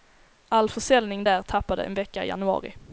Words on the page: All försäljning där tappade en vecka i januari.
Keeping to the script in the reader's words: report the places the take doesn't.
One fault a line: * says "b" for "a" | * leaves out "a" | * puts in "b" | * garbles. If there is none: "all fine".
all fine